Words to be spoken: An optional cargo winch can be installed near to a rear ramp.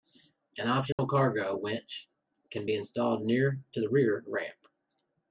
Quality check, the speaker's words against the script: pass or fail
fail